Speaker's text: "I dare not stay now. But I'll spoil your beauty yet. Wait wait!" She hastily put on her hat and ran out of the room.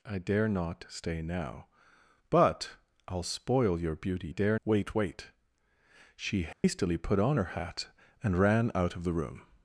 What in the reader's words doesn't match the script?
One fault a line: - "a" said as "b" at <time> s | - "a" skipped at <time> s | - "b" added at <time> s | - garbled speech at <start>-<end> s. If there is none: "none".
- "yet" said as "dare" at 4.3 s